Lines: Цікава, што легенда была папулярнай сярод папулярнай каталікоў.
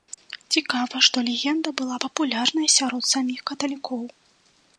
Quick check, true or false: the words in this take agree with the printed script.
false